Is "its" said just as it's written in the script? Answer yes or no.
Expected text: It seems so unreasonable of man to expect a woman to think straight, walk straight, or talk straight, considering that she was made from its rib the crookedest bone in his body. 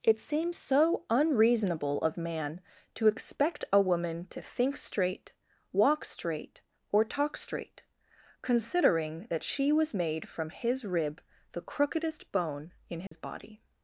no